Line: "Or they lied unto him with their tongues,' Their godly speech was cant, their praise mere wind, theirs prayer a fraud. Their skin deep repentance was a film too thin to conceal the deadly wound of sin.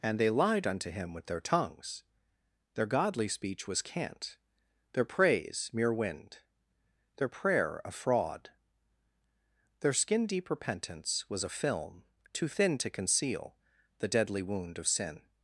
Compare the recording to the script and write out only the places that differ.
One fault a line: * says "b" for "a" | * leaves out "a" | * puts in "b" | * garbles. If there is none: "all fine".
* says "And" for "Or"
* says "their" for "theirs"